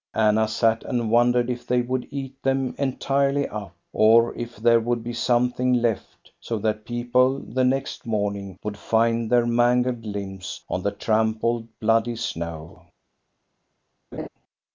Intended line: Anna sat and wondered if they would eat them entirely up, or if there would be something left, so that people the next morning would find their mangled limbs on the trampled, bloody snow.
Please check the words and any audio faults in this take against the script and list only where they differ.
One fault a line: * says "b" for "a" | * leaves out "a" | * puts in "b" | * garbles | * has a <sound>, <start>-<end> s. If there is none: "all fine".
* has a laugh, 14.1-14.3 s